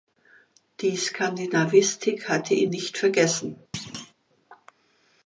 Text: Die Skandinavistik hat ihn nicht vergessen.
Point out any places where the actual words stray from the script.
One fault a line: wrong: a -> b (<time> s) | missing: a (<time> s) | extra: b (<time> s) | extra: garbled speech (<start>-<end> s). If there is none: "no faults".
wrong: hat -> hatte (2.3 s)